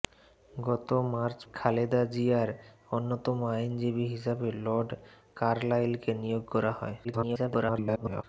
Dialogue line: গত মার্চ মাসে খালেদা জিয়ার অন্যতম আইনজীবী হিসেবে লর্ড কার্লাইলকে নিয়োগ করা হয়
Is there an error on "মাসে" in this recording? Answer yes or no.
yes